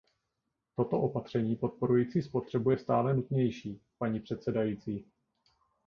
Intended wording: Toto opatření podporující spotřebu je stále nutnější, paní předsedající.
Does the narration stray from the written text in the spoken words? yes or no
no